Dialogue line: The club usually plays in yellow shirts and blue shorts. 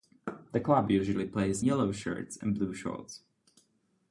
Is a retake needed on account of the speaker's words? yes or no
yes